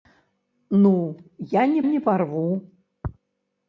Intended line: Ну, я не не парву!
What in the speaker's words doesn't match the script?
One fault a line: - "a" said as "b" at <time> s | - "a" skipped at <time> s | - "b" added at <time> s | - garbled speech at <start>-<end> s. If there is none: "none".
none